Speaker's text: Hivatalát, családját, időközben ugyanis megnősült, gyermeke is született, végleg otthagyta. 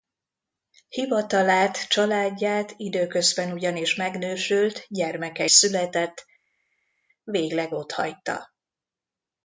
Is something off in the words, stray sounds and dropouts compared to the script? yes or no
yes